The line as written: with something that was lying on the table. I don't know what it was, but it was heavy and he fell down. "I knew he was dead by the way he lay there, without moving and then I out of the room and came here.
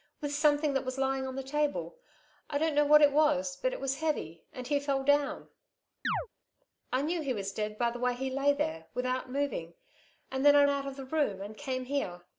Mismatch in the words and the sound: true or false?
true